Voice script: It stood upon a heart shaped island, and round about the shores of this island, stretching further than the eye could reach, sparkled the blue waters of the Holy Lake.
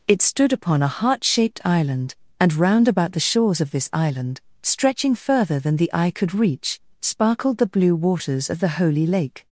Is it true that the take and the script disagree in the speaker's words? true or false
false